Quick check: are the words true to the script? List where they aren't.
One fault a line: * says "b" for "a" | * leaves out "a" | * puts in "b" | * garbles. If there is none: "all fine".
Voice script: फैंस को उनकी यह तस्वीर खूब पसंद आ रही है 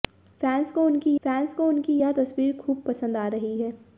* puts in "फैंस को उनकी"